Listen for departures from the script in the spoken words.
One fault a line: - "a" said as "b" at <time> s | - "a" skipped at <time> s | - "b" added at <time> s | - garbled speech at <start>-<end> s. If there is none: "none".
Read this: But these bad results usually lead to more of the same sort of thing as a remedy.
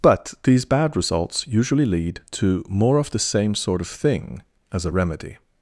none